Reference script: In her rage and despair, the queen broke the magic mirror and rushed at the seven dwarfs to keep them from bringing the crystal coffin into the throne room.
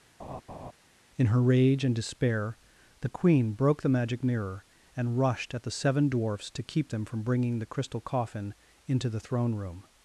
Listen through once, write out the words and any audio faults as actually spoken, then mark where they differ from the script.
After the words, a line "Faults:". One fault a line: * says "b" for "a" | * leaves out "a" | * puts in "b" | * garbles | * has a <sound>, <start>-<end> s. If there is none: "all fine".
In her rage and despair, the queen broke the magic mirror and rushed at the seven dwarfs to keep them from bringing the crystal coffin into the throne room.
Faults:
* has a laugh, 0.2-0.7 s